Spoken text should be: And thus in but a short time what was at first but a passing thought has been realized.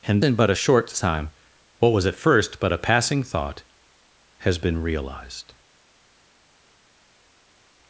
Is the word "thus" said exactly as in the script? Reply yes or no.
no